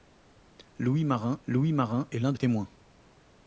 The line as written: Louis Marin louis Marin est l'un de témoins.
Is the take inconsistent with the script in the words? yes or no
no